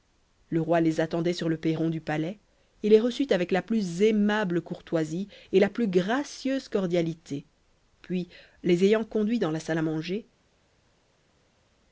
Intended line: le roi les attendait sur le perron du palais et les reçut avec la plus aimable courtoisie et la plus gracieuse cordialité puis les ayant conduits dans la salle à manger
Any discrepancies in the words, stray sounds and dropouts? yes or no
no